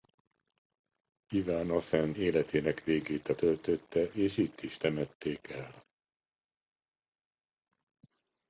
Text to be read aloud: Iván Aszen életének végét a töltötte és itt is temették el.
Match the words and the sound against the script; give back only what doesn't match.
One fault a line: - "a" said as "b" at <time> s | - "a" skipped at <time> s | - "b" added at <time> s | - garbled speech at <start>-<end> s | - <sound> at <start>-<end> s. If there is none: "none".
none